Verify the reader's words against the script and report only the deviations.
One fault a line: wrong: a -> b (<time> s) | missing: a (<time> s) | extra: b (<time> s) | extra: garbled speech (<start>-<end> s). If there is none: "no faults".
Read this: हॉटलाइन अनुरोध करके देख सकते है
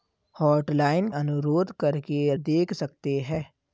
no faults